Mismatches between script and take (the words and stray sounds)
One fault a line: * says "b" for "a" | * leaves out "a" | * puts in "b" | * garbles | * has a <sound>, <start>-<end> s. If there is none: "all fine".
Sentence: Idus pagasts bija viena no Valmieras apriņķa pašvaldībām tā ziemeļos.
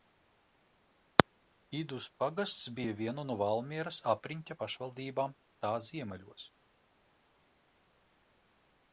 all fine